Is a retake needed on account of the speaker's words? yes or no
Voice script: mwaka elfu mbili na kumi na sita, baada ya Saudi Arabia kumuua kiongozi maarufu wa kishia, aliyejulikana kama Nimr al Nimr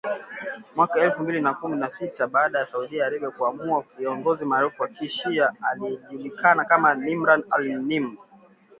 no